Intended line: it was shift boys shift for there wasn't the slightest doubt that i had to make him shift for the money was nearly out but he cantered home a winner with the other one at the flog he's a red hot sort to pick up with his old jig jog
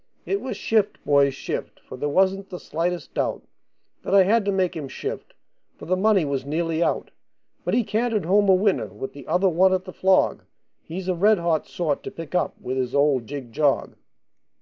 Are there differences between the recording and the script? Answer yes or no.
no